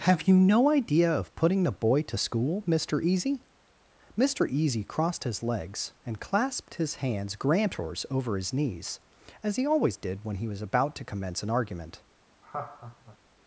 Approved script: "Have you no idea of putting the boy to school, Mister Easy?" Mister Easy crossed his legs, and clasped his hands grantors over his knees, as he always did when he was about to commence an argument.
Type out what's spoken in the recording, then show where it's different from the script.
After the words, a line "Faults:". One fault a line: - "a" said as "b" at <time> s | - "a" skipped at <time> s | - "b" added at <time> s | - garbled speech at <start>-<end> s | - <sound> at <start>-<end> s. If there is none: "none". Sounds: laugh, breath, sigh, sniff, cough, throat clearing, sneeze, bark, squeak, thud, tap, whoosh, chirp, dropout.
"Have you no idea of putting the boy to school, Mister Easy?" Mister Easy crossed his legs, and clasped his hands grantors over his knees, as he always did when he was about to commence an argument.
Faults:
- laugh at 12.4-13.2 s